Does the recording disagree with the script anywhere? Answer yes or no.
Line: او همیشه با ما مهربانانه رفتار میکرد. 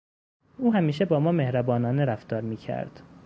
no